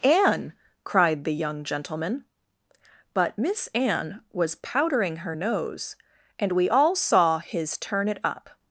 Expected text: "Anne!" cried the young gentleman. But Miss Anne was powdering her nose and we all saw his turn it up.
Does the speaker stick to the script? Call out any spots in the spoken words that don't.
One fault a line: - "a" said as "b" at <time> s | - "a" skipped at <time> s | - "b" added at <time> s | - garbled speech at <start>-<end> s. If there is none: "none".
none